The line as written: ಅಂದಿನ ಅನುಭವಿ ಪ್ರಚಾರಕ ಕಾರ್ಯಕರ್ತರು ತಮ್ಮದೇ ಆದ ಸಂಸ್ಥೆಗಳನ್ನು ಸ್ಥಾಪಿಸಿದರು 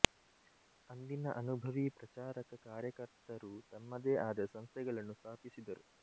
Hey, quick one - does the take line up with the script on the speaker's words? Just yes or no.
yes